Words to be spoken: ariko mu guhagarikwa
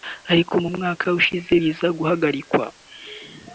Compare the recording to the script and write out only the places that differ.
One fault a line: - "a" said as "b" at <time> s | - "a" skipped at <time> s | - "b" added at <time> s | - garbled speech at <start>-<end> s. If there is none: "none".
- "mwaka ushize biza" added at 0.8 s